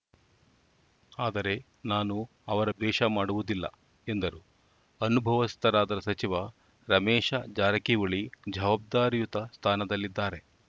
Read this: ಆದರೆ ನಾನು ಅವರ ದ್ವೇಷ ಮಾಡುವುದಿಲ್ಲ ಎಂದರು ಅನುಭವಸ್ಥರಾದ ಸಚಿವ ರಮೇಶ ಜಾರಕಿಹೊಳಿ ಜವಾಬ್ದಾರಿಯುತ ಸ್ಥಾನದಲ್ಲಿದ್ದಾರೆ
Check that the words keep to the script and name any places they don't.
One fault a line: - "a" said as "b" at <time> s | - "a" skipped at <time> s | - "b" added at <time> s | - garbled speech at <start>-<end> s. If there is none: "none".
none